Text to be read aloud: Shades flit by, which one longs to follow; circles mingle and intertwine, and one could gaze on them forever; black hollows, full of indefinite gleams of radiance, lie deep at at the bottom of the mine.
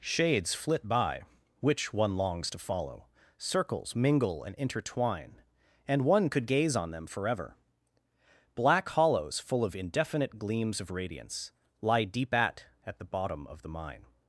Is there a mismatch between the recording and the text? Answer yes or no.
no